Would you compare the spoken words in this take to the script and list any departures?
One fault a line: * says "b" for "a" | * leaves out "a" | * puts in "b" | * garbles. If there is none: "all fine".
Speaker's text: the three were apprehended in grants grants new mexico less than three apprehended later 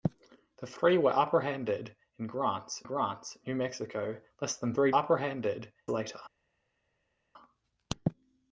all fine